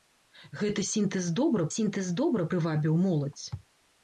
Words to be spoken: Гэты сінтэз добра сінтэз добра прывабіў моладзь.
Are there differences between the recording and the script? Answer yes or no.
no